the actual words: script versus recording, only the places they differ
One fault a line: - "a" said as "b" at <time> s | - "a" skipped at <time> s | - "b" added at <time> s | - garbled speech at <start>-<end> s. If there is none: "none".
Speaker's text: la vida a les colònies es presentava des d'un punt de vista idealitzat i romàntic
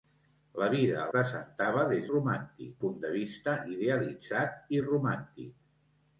- "les colònies es" skipped at 1.1 s
- "d'un" said as "romàntic" at 2.1 s